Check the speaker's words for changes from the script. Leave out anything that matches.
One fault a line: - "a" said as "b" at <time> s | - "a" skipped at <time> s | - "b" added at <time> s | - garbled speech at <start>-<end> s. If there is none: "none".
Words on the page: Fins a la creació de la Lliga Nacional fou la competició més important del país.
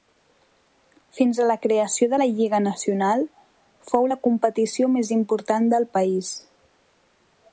none